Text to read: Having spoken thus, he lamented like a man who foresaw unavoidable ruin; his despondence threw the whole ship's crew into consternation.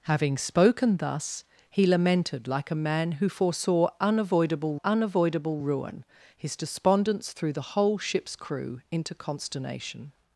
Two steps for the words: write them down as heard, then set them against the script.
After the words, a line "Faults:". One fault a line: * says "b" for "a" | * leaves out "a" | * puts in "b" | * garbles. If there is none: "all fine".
Having spoken thus, he lamented like a man who foresaw unavoidable unavoidable ruin; his despondence threw the whole ship's crew into consternation.
Faults:
* puts in "unavoidable"